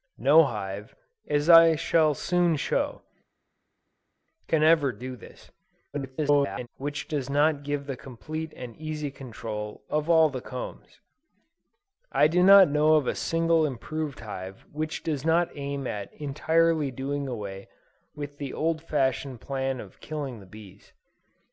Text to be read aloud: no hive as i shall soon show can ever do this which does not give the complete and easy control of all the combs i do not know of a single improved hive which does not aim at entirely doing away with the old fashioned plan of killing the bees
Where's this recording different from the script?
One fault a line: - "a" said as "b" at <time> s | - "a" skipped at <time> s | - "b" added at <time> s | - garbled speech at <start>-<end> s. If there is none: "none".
- garbled speech at 5.9-6.7 s